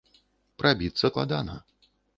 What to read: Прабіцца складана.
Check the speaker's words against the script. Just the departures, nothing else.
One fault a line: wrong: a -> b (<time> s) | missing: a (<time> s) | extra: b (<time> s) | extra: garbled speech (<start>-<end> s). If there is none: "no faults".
no faults